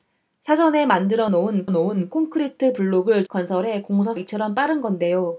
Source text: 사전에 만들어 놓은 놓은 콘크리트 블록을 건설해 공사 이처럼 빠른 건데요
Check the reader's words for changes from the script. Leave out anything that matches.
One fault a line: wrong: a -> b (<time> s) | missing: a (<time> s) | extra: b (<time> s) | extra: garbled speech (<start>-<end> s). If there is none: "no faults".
no faults